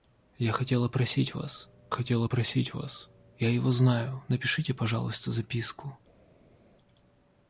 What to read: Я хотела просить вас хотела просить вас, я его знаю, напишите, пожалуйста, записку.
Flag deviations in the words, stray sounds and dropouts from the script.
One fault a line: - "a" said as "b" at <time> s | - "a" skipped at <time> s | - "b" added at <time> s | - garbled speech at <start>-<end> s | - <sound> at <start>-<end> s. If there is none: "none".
none